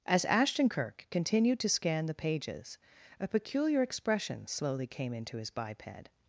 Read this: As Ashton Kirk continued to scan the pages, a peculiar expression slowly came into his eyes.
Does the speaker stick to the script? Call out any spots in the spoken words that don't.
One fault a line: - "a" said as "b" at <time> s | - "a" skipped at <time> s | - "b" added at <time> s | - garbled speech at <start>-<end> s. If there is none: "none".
- "eyes" said as "biped" at 5.5 s